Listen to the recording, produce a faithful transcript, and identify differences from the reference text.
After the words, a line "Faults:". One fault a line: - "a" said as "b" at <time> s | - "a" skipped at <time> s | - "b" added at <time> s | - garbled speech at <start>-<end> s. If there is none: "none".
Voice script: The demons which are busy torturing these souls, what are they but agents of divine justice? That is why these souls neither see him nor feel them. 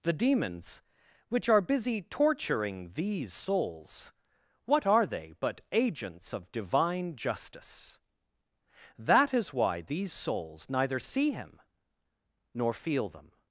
The demons which are busy torturing these souls, what are they but agents of divine justice? That is why these souls neither see him nor feel them.
Faults:
none